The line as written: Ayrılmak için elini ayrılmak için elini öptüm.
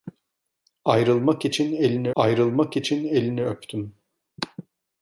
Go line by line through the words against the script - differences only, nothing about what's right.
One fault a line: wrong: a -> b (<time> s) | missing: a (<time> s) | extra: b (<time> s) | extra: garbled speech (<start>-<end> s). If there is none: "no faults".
no faults